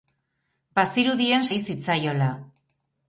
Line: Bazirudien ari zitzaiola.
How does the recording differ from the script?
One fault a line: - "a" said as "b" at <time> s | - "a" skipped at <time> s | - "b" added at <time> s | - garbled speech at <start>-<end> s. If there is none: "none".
none